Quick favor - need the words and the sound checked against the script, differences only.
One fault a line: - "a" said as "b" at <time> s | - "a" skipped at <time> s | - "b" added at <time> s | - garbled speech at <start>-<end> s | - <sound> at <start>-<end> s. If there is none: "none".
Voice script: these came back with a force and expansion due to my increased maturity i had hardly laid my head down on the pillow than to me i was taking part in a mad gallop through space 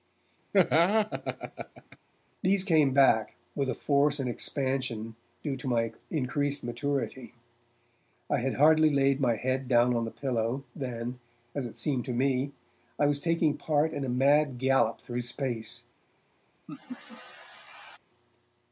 - laugh at 0.5-2.0 s
- "as it seemed" added at 11.5 s
- laugh at 16.7-18.0 s